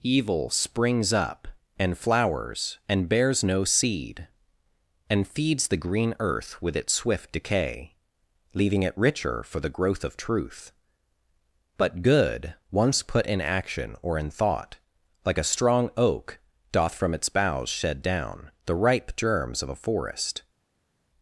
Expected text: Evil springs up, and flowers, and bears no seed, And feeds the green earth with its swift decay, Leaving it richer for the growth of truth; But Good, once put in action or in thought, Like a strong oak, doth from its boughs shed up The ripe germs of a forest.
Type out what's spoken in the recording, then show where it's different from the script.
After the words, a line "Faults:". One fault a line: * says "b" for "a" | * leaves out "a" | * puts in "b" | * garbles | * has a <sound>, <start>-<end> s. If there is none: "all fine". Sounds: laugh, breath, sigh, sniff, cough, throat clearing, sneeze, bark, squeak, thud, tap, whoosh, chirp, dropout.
Evil springs up, and flowers, and bears no seed, And feeds the green earth with its swift decay, Leaving it richer for the growth of truth; But Good, once put in action or in thought, Like a strong oak, doth from its boughs shed down The ripe germs of a forest.
Faults:
* says "down" for "up"